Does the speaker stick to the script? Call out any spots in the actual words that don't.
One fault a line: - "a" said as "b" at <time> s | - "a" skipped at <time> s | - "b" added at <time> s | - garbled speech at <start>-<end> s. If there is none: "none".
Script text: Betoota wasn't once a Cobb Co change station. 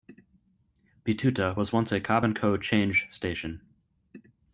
- "wasn't" said as "was" at 1.6 s
- "and" added at 2.2 s